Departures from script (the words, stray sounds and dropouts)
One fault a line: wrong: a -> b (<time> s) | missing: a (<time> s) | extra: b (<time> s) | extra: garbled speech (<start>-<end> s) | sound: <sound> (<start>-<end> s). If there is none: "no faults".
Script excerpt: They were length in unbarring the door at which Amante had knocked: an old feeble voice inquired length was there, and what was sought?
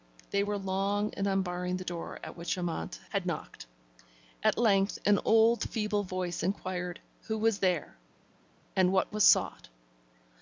wrong: length -> long (0.6 s)
extra: at length (4.4 s)
wrong: length -> who (7.2 s)